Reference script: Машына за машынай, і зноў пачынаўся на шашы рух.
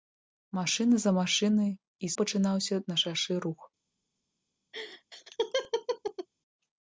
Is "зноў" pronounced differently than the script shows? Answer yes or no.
yes